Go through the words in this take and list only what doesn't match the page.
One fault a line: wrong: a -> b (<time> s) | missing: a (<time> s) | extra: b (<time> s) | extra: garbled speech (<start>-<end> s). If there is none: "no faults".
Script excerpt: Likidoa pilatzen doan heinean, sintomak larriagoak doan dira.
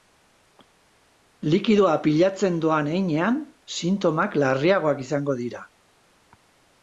wrong: doan -> izango (5.1 s)